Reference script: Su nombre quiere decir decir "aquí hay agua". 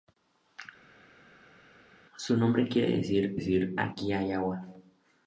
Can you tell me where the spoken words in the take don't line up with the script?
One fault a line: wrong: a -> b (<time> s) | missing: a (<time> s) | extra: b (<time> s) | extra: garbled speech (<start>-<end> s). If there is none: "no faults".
no faults